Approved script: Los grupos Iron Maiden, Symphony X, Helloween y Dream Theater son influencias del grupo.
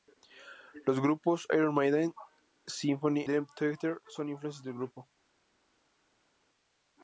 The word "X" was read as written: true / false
false